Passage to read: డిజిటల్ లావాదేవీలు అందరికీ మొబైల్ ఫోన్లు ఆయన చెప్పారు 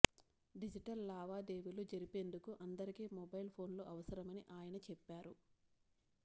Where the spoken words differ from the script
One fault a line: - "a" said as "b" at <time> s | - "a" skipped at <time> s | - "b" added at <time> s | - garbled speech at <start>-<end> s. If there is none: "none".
- "జరిపేందుకు" added at 1.9 s
- "అవసరమని" added at 3.9 s